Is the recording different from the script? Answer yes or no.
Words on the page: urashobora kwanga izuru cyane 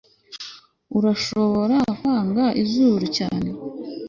no